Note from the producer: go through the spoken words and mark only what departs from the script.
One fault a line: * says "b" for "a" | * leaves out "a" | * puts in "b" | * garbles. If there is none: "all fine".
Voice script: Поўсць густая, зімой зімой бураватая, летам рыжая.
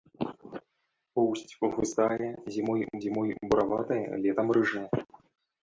all fine